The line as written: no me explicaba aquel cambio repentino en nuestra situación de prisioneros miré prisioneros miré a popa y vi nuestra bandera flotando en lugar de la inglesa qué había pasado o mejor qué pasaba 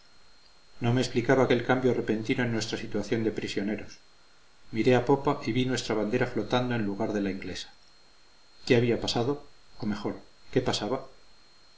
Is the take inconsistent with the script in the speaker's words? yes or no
yes